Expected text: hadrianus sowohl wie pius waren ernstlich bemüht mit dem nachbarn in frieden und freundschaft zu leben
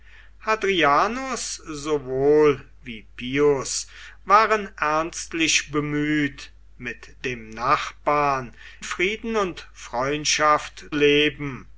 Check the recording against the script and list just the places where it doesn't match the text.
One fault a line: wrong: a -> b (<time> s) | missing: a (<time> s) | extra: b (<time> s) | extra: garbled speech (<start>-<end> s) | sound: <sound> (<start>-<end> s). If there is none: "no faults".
missing: in (8.6 s)
missing: zu (10.9 s)